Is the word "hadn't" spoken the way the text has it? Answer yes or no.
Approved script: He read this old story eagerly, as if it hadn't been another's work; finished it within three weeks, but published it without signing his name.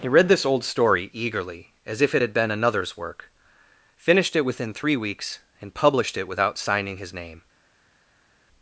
no